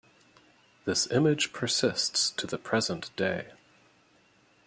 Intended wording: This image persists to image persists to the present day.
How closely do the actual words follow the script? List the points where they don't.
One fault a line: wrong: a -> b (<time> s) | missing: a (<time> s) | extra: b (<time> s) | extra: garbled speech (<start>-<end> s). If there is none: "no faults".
missing: image persists to (2.5 s)